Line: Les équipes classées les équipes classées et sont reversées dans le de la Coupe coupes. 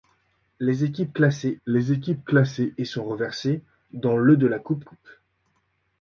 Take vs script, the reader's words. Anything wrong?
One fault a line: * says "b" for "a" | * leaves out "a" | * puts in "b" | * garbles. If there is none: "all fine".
all fine